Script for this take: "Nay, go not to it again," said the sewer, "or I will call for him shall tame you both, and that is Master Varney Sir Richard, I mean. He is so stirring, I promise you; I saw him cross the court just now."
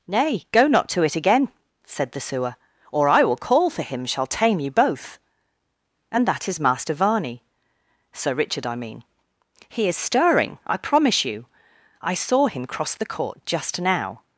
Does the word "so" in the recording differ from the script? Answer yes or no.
yes